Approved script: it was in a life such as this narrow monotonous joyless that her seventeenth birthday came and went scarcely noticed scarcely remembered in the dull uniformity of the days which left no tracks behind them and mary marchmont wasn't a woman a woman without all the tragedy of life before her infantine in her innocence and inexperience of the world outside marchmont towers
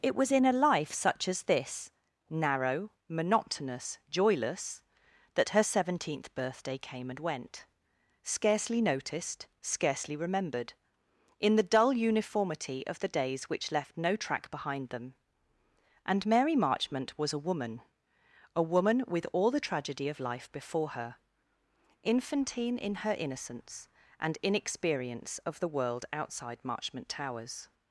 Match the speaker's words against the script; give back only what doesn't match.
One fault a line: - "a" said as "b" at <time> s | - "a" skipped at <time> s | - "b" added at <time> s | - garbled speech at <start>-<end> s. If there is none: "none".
- "tracks" said as "track" at 14.2 s
- "wasn't" said as "was" at 17.2 s
- "without" said as "with" at 19.1 s